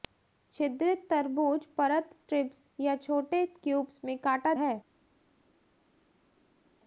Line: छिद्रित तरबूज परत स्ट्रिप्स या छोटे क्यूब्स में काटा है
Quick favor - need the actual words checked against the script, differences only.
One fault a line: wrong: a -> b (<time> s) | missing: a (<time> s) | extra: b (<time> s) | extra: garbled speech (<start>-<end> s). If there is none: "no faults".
no faults